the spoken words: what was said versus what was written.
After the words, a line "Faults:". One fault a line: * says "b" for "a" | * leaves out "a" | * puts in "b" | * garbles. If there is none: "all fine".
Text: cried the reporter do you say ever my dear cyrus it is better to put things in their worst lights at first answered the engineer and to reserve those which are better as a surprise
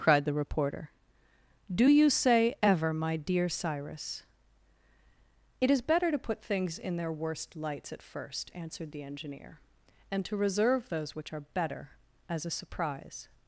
cried the reporter do you say ever my dear cyrus it is better to put things in their worst lights at first answered the engineer and to reserve those which are better as a surprise
Faults:
all fine